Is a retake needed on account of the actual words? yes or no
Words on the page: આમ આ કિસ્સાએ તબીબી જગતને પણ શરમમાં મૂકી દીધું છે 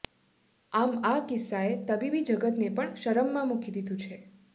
no